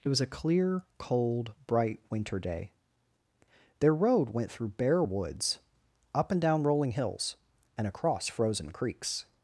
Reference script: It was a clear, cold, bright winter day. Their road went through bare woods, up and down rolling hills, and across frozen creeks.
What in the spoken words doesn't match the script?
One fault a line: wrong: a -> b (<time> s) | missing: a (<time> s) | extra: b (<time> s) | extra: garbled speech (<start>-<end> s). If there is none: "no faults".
no faults